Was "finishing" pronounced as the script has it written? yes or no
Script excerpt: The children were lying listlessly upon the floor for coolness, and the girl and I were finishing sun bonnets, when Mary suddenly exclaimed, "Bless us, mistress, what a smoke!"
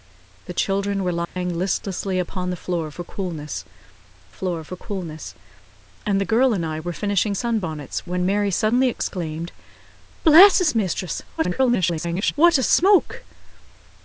yes